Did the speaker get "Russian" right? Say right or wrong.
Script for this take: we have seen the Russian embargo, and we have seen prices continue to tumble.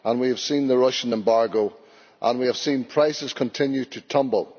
right